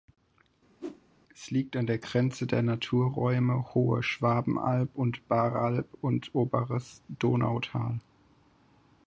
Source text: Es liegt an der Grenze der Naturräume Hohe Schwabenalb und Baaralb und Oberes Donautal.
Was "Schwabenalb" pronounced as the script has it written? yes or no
yes